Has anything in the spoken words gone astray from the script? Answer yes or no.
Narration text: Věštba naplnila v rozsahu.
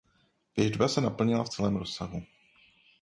yes